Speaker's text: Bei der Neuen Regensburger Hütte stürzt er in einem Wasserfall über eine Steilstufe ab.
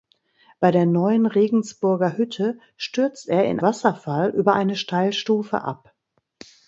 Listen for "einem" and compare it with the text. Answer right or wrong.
wrong